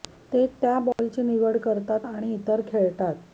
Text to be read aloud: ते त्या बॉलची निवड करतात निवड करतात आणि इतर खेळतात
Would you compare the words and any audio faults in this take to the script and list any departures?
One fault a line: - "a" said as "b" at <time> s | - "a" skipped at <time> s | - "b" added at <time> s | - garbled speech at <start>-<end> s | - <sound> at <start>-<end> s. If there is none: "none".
- dropout at 0.9-1.0 s
- "निवड करतात" skipped at 2.1 s